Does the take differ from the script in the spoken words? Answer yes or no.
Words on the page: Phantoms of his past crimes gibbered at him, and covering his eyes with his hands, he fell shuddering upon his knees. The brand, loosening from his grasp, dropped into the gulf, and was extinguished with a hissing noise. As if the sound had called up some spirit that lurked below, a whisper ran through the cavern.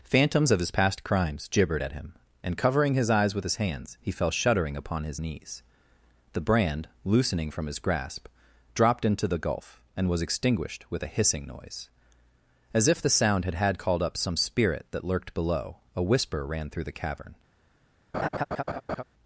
yes